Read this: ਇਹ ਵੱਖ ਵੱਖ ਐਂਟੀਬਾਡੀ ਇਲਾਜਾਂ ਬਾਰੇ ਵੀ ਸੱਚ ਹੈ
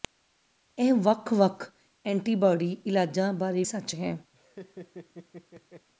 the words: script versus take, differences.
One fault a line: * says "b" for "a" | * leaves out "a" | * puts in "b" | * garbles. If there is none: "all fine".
* leaves out "ਵੀ"